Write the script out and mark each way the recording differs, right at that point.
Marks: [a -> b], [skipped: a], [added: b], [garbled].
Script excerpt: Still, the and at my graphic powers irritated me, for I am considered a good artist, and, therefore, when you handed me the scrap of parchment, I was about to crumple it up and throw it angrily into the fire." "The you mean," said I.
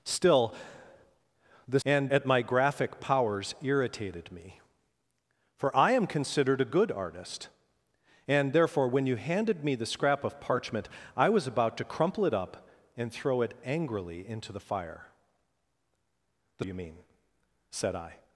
Still, the and at my graphic powers irritated me, for I am considered a good artist, and, therefore, when you handed me the scrap of parchment, I was about to crumple it up and throw it angrily into the fire." "The you mean," said I.